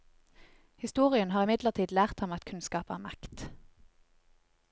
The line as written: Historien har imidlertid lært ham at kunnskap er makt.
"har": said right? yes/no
yes